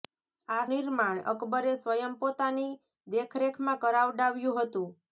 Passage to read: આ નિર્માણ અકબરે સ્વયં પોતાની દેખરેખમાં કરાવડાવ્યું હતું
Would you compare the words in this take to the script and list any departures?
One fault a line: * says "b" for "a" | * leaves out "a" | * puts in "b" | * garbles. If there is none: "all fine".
all fine